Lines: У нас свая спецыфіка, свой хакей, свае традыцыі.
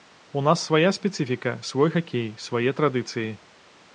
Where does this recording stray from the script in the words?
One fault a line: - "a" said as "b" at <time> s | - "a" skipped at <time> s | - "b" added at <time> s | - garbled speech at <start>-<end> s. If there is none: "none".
none